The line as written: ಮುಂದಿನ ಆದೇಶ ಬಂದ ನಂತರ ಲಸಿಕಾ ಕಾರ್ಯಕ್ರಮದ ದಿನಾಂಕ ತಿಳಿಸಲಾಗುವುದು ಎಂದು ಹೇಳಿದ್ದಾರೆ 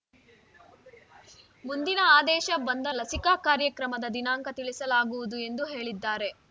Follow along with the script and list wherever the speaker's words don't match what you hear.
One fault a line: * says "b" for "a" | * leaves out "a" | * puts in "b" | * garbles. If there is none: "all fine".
* leaves out "ನಂತರ"